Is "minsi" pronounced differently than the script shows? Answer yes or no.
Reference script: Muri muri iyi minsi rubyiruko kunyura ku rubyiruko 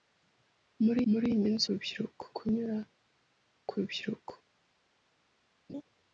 no